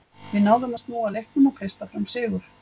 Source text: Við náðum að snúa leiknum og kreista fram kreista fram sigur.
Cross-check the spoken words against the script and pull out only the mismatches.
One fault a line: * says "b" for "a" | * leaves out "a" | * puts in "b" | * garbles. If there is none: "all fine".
* leaves out "kreista fram"